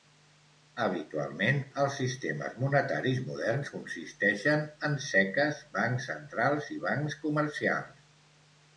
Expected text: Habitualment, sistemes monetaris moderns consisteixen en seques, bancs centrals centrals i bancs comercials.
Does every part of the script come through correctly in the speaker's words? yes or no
no